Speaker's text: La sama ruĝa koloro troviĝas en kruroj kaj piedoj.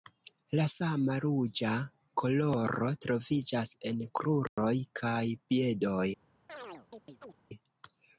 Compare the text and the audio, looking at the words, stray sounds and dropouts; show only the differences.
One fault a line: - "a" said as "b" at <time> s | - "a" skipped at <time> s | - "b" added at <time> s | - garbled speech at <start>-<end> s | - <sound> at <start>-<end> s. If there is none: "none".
- dropout at 4.5-4.6 s
- chirp at 6.5-7.4 s